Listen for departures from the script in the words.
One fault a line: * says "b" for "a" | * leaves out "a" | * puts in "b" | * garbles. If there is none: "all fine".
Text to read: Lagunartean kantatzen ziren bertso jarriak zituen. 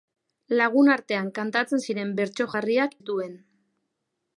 all fine